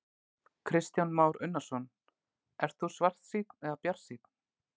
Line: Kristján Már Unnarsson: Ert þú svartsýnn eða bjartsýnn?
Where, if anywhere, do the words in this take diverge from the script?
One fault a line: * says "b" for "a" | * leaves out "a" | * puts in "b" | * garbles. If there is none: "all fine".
all fine